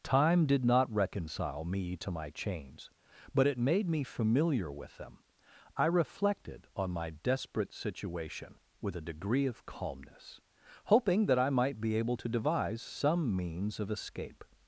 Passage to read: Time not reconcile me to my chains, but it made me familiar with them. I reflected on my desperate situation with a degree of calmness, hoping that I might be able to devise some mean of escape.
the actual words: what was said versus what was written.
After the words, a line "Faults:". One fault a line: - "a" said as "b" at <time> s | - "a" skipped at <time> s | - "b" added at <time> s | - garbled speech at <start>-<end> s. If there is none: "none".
Time did not reconcile me to my chains, but it made me familiar with them. I reflected on my desperate situation with a degree of calmness, hoping that I might be able to devise some means of escape.
Faults:
- "did" added at 0.5 s
- "mean" said as "means" at 13.3 s